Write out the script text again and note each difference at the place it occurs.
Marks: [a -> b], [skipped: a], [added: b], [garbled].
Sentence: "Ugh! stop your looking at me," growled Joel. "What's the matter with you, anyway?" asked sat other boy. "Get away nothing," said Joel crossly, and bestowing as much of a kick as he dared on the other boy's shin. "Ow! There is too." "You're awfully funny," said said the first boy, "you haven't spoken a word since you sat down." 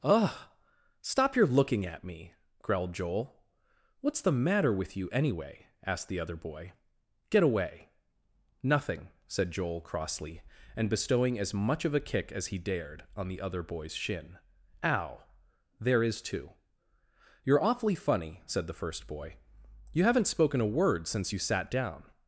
"Ugh! stop your looking at me," growled Joel. "What's the matter with you, anyway?" asked [sat -> the] other boy. "Get away nothing," said Joel crossly, and bestowing as much of a kick as he dared on the other boy's shin. "Ow! There is too." "You're awfully funny," said [skipped: said] the first boy, "you haven't spoken a word since you sat down."